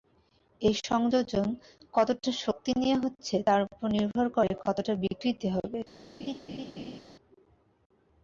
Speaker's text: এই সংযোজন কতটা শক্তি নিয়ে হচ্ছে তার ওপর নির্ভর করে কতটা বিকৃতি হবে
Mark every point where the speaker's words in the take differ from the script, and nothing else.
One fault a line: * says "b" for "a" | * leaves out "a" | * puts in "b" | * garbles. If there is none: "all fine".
all fine